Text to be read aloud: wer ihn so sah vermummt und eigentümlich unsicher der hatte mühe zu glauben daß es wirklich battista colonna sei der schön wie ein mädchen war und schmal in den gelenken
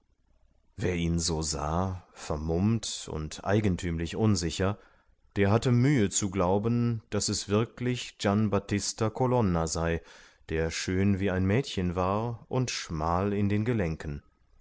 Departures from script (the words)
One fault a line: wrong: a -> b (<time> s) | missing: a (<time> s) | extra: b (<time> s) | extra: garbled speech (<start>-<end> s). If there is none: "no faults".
extra: gian (8.2 s)